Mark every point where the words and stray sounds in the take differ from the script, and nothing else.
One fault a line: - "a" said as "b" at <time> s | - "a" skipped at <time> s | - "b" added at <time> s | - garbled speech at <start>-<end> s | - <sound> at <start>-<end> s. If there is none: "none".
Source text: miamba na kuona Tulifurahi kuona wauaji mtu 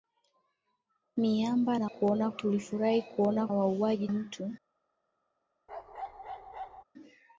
- bark at 5.7-6.8 s